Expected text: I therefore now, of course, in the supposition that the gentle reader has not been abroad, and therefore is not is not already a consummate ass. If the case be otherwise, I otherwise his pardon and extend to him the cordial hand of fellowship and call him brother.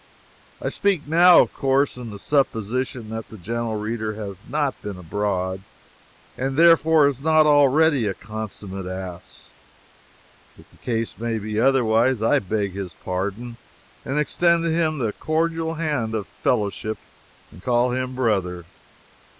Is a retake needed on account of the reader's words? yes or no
yes